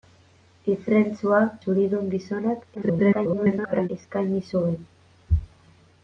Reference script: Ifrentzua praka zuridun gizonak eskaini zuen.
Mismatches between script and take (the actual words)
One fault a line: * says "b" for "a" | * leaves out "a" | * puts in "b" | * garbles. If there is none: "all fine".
* leaves out "praka"
* garbles